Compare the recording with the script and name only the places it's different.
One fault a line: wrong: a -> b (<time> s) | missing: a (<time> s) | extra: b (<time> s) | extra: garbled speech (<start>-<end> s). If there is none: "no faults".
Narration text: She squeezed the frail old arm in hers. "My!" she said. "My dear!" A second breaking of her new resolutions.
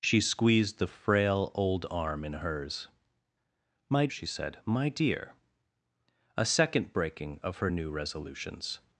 no faults